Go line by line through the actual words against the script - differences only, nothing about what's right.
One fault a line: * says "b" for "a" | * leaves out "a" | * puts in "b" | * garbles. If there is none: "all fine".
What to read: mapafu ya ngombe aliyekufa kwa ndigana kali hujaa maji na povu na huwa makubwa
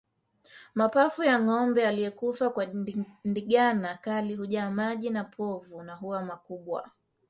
all fine